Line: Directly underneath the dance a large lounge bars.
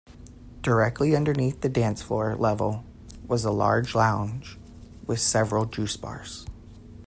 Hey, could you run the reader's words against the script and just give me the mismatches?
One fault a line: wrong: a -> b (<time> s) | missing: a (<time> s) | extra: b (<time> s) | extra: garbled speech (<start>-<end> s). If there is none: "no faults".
extra: floor level was (2.0 s)
extra: with several juice (5.0 s)